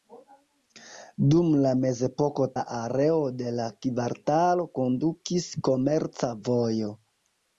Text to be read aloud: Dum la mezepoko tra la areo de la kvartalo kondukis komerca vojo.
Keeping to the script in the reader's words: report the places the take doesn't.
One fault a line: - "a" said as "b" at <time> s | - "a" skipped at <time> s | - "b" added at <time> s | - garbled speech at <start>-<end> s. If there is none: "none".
- "tra" skipped at 2.5 s